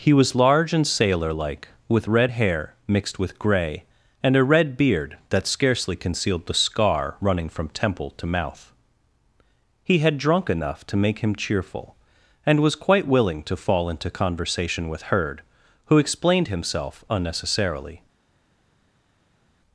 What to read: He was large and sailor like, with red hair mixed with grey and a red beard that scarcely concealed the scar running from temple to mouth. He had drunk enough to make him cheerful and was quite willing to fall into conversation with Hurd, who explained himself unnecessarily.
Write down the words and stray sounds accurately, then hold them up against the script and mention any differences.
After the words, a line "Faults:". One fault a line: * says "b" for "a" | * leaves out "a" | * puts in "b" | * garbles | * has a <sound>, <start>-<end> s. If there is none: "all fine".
He was large and sailor like, with red hair mixed with grey and a red beard that scarcely concealed the scar running from temple to mouth. He had drunk enough to make him cheerful and was quite willing to fall into conversation with Hurd, who explained himself unnecessarily.
Faults:
all fine